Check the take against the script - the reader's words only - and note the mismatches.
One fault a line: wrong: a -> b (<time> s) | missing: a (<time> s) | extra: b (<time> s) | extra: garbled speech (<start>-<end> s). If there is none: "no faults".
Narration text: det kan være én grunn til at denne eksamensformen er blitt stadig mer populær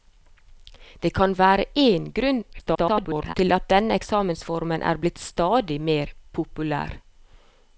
extra: garbled speech (2.5-3.3 s)